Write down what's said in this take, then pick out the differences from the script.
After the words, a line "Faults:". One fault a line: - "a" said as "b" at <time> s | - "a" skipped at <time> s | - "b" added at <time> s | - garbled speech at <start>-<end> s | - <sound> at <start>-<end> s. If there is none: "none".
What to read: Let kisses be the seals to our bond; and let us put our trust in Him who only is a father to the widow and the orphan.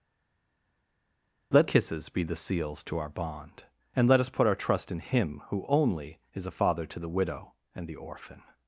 Let kisses be the seals to our bond; and let us put our trust in Him who only is a father to the widow and the orphan.
Faults:
none